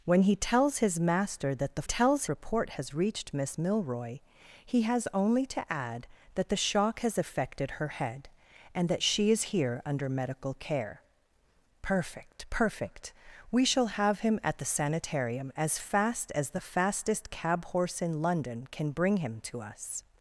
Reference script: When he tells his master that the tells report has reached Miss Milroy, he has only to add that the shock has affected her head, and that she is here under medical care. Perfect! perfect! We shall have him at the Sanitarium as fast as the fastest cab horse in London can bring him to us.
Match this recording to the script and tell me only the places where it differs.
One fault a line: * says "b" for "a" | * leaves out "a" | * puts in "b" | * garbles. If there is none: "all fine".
all fine